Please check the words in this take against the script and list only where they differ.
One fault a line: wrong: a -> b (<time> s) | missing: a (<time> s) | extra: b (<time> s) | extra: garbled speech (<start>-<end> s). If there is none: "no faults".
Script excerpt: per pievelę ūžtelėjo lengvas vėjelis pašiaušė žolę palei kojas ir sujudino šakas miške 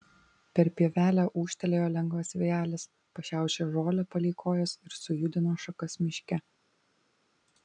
no faults